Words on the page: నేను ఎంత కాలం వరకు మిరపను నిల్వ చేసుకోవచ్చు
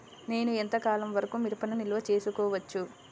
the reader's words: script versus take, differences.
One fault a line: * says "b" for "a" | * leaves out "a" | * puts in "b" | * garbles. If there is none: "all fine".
all fine